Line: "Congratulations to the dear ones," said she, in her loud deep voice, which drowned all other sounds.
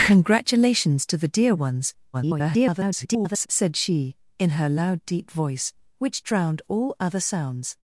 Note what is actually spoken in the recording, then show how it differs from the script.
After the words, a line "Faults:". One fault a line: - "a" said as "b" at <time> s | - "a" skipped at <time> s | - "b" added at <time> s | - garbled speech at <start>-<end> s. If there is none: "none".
"Congratulations to the dear ones," [garbled] said she, in her loud deep voice, which drowned all other sounds.
Faults:
- garbled speech at 2.1-3.5 s